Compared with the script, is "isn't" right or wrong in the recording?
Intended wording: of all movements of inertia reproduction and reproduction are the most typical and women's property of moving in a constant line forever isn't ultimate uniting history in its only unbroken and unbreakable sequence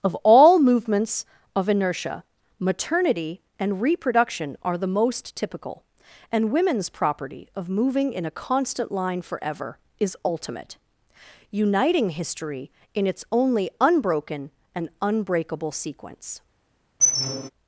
wrong